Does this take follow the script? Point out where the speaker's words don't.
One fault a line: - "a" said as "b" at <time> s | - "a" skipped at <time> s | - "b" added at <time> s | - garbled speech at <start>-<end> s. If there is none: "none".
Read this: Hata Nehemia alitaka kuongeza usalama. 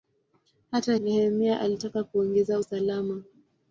none